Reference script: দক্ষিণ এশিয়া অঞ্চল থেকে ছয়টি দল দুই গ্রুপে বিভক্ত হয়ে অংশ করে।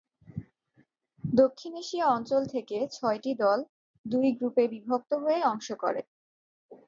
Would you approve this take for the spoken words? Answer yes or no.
yes